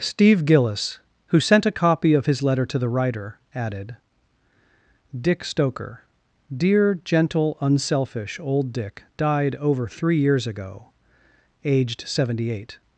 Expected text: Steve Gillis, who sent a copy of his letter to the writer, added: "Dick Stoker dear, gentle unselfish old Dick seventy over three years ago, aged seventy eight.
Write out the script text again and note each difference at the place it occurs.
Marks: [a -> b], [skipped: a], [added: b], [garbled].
Steve Gillis, who sent a copy of his letter to the writer, added: "Dick Stoker dear, gentle unselfish old Dick [seventy -> died] over three years ago, aged seventy eight.